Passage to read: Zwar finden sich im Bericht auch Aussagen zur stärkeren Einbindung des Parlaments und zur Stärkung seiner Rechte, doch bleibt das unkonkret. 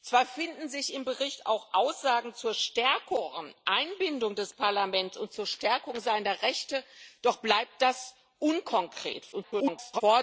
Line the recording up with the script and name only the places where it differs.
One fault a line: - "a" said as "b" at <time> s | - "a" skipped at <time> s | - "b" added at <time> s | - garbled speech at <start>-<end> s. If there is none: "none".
- garbled speech at 9.3-10.0 s